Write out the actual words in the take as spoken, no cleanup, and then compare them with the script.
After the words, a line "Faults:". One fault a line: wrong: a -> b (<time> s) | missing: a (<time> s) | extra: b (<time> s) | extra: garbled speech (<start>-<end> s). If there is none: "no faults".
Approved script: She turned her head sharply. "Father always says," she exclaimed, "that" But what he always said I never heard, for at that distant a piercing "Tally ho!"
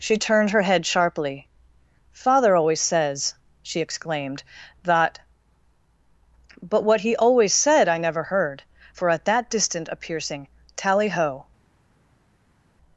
She turned her head sharply. "Father always says," she exclaimed, "that" But what he always said I never heard, for at that distant a piercing "Tally ho!"
Faults:
no faults